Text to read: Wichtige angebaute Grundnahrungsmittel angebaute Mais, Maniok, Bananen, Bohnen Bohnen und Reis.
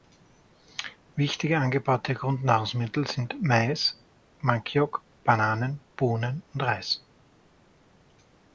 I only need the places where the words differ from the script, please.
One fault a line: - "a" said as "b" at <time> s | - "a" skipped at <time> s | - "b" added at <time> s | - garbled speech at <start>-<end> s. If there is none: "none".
- "angebaute" said as "sind" at 3.0 s
- "Bohnen" skipped at 6.4 s